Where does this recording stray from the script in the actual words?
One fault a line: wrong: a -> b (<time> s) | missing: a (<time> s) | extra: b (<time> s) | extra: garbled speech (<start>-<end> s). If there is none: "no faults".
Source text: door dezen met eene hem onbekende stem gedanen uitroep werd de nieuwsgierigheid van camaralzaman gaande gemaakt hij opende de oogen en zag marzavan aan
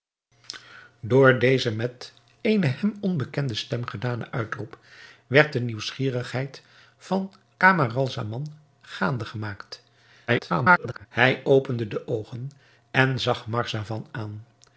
extra: garbled speech (10.3-11.1 s)